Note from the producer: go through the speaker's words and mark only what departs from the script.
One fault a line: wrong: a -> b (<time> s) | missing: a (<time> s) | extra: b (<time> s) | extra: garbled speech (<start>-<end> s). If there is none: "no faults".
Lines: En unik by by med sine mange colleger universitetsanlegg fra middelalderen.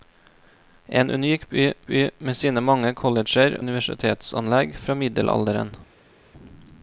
no faults